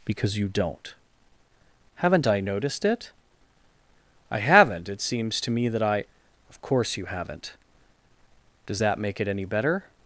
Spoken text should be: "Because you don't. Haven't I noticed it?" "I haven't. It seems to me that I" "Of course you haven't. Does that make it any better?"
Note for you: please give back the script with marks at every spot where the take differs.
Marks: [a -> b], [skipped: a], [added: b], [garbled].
"Because you don't. Haven't I noticed it?" "I haven't. It seems to me that I" "Of course you haven't. Does that make it any better?"